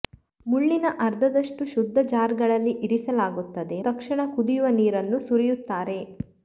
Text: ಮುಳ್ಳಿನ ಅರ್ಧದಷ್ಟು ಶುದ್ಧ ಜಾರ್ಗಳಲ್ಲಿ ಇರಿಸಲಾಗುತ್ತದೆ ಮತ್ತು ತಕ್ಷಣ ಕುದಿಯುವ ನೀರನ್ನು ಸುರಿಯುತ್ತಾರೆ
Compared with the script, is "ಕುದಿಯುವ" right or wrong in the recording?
right